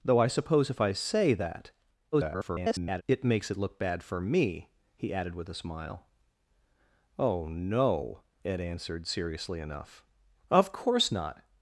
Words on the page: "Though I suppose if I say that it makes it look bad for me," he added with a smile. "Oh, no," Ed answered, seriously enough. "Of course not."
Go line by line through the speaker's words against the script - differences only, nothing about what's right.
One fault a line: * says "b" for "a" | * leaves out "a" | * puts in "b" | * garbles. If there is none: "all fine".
* garbles